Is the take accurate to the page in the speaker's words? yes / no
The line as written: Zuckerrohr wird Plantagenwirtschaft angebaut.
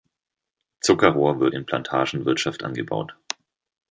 no